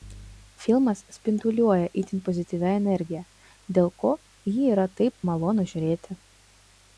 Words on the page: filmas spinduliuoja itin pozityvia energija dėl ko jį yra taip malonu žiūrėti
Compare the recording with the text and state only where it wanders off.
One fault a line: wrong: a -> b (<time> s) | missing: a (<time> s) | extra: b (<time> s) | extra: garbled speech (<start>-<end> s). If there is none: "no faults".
no faults